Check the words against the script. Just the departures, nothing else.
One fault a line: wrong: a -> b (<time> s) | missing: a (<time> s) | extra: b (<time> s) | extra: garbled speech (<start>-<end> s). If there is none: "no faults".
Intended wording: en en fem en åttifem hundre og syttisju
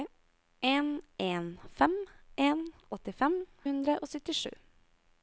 no faults